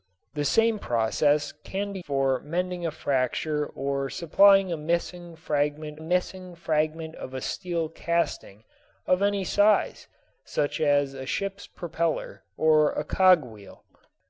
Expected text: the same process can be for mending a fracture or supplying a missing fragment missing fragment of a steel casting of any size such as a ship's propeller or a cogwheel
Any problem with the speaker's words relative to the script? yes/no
no